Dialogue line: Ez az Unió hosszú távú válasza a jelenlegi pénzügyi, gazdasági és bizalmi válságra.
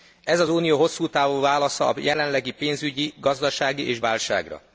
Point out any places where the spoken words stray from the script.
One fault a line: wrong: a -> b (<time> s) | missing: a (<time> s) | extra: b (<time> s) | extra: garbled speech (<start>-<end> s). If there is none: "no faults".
missing: bizalmi (4.0 s)